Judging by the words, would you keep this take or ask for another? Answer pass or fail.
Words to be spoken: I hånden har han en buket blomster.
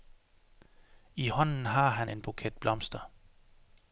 pass